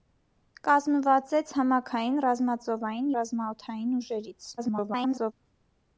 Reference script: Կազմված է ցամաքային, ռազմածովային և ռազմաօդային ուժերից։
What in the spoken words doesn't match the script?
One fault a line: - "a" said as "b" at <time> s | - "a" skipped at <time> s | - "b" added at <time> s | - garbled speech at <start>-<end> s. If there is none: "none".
- "և" skipped at 3.1 s
- garbled speech at 4.6-5.3 s